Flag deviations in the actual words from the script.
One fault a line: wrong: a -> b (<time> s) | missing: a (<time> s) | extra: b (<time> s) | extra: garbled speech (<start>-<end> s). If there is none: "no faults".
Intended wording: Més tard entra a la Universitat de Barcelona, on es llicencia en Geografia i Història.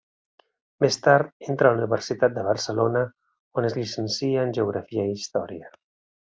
no faults